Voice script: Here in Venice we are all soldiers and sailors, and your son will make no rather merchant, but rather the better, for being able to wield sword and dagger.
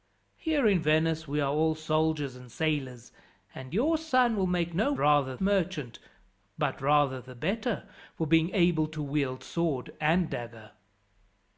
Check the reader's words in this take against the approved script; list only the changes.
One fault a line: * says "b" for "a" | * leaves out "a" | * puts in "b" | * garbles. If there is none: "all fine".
all fine